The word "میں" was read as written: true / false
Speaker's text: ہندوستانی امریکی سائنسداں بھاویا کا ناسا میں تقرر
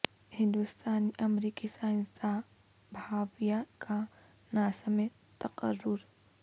true